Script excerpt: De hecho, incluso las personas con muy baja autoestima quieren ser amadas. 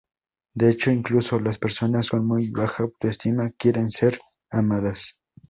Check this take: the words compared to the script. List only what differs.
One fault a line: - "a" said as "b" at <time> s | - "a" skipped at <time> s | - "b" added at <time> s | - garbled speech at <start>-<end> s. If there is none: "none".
none